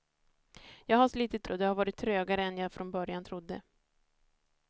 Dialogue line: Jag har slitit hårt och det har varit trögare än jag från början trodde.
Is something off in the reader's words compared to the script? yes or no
yes